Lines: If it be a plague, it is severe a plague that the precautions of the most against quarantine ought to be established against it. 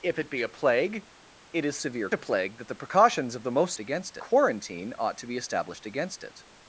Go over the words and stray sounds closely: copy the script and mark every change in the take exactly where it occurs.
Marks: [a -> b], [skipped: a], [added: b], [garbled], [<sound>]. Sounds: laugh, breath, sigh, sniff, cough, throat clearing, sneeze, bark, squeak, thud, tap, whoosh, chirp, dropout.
If it be a plague, it is severe a plague that the precautions of the most against quarantine ought to be established against it.